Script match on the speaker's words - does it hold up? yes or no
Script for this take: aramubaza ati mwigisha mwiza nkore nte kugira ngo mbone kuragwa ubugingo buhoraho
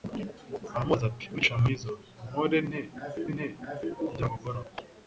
no